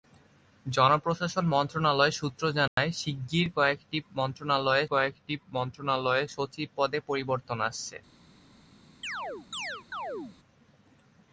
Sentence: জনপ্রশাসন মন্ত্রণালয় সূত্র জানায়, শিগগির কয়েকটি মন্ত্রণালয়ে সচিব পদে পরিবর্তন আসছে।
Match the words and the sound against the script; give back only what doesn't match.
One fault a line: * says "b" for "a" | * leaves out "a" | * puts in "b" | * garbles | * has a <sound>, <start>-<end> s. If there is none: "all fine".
* has a dropout, 2.7-2.8 s
* puts in "কয়েকটি মন্ত্রণালয়ে"
* has a chirp, 9.0-10.4 s